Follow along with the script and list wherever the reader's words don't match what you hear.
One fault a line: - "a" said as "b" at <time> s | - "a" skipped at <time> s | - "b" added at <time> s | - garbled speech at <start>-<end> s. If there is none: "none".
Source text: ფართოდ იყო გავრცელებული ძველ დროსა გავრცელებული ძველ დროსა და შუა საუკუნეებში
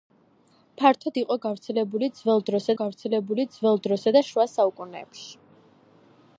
none